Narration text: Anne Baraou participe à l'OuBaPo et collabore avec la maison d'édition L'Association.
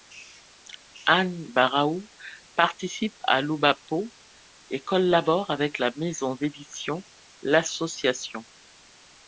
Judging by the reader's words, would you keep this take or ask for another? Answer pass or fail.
pass